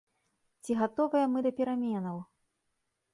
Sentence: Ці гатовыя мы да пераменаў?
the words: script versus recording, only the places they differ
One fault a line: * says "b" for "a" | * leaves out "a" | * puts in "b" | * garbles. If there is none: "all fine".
all fine